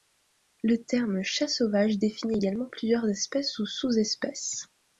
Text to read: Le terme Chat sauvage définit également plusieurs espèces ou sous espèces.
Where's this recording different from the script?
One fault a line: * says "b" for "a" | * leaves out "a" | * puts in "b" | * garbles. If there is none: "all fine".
all fine